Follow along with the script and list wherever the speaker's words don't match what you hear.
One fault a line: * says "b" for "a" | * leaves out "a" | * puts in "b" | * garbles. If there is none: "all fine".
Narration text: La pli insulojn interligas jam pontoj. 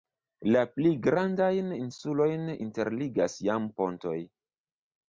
* puts in "grandajn"